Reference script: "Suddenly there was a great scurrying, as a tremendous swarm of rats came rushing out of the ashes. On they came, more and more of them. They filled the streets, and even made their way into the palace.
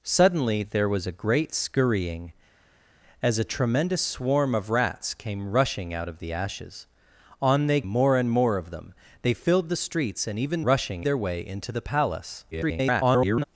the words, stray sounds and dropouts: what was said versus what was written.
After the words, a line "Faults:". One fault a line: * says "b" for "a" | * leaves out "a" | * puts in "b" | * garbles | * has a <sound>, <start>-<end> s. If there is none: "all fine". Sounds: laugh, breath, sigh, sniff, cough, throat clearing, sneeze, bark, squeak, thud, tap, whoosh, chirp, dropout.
"Suddenly there was a great scurrying, as a tremendous swarm of rats came rushing out of the ashes. On they more and more of them. They filled the streets, and even rushing their way into the palace. [garbled]
Faults:
* leaves out "came"
* says "rushing" for "made"
* garbles